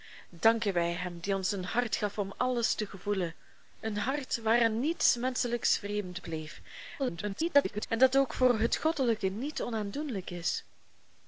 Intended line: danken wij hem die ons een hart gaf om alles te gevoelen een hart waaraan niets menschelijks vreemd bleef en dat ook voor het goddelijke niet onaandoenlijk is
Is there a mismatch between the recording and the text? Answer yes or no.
yes